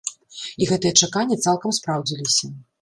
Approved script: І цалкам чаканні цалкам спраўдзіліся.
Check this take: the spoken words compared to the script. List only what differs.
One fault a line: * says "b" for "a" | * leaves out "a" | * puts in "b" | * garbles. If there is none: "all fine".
* says "гэтыя" for "цалкам"